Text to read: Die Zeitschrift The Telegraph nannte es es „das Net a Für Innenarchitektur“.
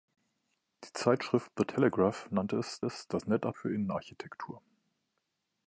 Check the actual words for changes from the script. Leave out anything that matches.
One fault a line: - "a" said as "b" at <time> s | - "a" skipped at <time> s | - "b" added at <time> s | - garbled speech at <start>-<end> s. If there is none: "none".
none